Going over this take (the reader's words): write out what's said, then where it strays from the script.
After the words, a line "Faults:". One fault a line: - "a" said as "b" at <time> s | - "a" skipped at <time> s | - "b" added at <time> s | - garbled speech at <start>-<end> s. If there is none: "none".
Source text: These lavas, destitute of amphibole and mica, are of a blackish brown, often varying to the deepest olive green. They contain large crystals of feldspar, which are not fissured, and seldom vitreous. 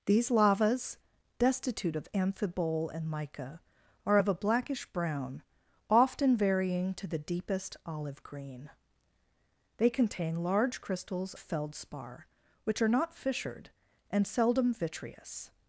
These lavas, destitute of amphibole and mica, are of a blackish brown, often varying to the deepest olive green. They contain large crystals feldspar, which are not fissured, and seldom vitreous.
Faults:
- "of" skipped at 11.3 s